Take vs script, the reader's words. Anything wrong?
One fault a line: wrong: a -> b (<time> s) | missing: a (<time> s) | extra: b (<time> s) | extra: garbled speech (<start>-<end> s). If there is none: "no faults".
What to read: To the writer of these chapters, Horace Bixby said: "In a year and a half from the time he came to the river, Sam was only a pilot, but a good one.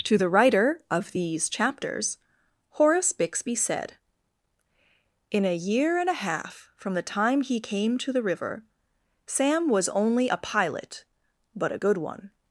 no faults